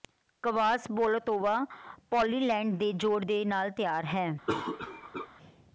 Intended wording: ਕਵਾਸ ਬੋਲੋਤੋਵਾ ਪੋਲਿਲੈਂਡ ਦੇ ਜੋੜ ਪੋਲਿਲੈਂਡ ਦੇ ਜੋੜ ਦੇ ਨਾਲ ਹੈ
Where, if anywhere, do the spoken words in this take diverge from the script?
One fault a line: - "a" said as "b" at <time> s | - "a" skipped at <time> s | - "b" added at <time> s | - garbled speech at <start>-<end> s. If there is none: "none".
- "ਪੋਲਿਲੈਂਡ" skipped at 3.2 s
- "ਜੋੜ ਦੇ ਨਾਲ" said as "ਨਾਲ ਤਿਆਰ" at 3.5 s